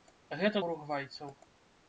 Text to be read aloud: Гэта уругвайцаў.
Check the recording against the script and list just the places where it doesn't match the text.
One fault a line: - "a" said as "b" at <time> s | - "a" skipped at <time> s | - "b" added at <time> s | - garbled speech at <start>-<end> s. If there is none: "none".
none